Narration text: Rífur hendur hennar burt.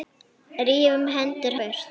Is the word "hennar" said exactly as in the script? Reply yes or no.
no